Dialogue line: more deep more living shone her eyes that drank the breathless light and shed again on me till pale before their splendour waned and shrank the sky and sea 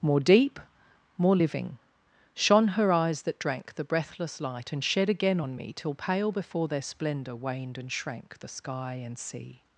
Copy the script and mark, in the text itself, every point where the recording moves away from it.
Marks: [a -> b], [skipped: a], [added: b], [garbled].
more deep more living shone her eyes that drank the breathless light and shed again on me till pale before their splendour waned and shrank the sky and sea